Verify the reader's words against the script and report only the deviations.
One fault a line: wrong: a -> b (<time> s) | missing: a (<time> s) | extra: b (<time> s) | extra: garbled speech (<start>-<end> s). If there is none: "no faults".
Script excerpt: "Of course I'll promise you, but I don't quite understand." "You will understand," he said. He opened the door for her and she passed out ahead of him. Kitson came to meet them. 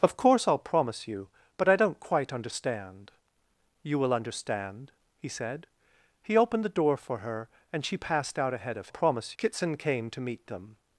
wrong: him -> promise (8.9 s)